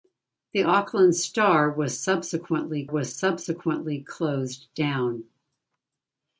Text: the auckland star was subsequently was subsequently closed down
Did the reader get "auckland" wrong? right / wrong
right